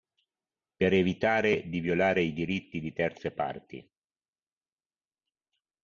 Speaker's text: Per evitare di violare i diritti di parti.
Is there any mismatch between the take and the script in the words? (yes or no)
yes